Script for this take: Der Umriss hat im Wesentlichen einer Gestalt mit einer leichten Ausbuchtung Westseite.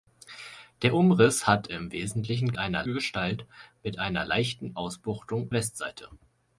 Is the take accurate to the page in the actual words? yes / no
yes